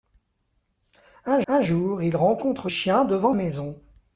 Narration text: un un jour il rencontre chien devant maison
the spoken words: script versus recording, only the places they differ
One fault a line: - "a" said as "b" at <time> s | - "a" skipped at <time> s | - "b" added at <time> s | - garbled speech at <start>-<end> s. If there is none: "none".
none